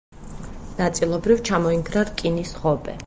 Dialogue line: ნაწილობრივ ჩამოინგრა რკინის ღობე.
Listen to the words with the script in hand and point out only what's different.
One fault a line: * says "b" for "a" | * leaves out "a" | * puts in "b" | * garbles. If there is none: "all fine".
all fine